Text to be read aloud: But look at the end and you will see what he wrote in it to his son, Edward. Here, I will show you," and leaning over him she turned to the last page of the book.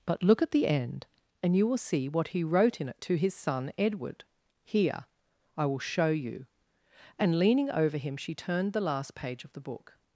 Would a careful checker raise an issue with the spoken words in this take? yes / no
yes